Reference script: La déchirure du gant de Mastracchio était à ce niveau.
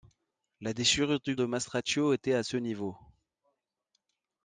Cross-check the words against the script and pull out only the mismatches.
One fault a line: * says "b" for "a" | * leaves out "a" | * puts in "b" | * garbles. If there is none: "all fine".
* leaves out "gant"